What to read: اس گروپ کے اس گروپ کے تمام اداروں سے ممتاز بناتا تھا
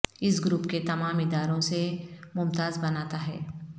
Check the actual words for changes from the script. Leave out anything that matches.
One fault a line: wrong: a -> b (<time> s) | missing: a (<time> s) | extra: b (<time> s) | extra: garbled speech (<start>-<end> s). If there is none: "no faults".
missing: اس گروپ کے (0.8 s)
wrong: تھا -> ہے (3.3 s)